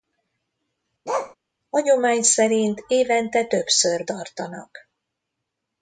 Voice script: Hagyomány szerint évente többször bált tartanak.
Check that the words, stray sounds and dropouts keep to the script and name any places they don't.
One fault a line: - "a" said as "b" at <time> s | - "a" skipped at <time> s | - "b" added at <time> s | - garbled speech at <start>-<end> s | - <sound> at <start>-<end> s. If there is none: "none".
- bark at 1.1-1.4 s
- "bált" skipped at 4.0 s